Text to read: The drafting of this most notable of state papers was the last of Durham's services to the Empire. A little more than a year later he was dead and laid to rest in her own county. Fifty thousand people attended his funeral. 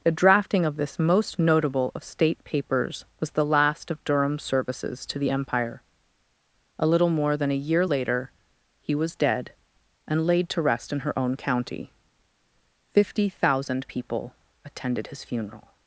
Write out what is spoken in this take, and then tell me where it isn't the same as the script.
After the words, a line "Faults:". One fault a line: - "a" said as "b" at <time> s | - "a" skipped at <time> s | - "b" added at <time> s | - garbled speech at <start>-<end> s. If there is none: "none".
The drafting of this most notable of state papers was the last of Durham's services to the Empire. A little more than a year later he was dead and laid to rest in her own county. Fifty thousand people attended his funeral.
Faults:
none